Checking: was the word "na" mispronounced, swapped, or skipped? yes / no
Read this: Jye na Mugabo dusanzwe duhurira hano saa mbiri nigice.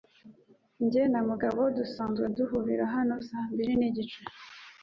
no